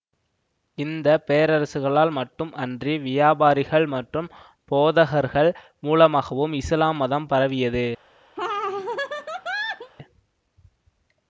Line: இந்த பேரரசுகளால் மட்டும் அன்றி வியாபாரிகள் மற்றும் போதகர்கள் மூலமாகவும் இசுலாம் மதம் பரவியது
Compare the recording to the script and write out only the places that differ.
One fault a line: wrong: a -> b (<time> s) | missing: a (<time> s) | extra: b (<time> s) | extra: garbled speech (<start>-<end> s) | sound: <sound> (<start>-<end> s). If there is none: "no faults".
sound: laugh (8.4-9.9 s)